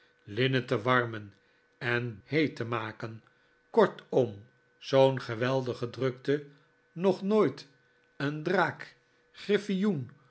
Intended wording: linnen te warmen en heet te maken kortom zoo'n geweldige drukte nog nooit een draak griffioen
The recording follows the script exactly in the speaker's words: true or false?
true